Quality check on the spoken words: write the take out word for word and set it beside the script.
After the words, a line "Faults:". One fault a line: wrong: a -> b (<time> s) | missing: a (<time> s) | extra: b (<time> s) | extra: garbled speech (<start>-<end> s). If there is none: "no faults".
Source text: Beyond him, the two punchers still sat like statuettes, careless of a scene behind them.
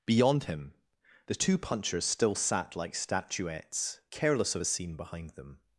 Beyond him, the two punchers still sat like statuettes, careless of a scene behind them.
Faults:
no faults